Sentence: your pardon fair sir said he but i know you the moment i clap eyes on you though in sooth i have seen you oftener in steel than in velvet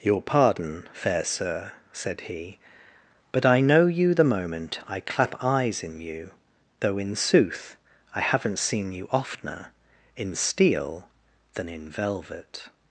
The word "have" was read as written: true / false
false